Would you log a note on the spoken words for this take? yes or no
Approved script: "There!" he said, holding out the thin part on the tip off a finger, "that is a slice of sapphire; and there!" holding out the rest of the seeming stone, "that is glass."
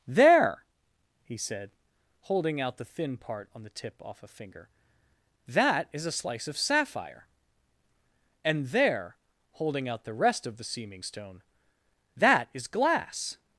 no